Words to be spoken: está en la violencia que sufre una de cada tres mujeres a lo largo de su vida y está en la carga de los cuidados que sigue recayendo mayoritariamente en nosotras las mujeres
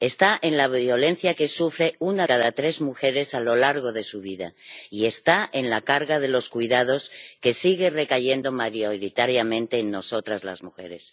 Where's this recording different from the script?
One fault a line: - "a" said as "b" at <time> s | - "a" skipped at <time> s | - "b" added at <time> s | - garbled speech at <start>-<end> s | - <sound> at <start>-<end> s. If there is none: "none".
- "de" skipped at 2.2 s